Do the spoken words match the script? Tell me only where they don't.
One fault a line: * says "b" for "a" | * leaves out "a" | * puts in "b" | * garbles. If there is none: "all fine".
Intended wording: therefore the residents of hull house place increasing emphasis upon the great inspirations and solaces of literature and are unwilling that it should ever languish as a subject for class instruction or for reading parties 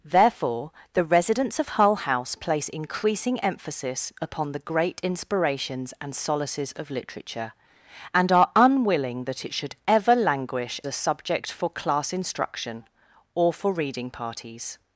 * leaves out "as"